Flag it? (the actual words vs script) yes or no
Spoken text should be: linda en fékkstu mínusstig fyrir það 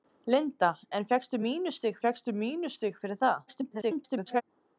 yes